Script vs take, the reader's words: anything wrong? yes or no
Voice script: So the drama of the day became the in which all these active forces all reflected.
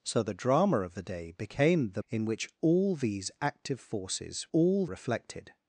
no